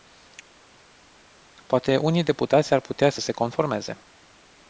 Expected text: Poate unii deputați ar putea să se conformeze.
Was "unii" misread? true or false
false